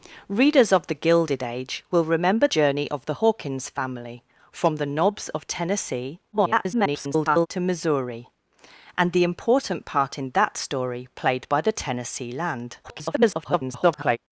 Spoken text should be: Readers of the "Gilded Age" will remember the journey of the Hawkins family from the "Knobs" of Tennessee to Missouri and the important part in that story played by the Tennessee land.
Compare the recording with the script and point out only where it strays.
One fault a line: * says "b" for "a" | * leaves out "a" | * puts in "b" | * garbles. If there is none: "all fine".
* leaves out "the"
* garbles
* garbles